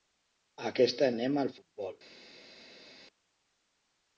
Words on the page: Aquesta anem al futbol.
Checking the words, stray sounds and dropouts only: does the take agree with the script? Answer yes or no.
yes